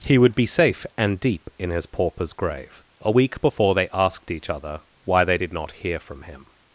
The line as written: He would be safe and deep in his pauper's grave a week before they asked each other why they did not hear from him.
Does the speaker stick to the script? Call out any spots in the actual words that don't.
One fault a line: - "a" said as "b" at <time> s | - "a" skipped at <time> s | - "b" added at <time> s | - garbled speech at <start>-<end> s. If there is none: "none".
none